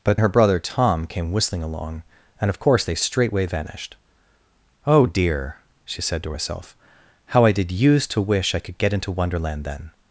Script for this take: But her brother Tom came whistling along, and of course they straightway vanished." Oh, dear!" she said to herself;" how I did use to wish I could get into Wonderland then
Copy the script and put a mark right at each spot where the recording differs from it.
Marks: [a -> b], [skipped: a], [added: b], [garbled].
But her brother Tom came whistling along, and of course they straightway vanished." Oh, dear!" she said to herself;" how I did use to wish I could get into Wonderland then